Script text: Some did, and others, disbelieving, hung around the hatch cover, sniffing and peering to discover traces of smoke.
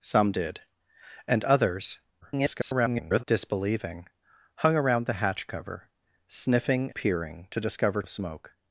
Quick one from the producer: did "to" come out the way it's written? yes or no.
yes